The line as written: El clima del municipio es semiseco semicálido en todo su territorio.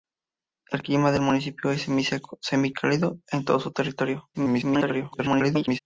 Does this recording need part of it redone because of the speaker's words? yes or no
yes